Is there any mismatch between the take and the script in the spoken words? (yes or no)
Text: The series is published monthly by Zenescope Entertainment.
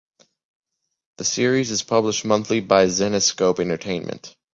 no